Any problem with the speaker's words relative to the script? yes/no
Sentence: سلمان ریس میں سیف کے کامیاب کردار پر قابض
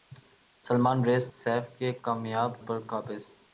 yes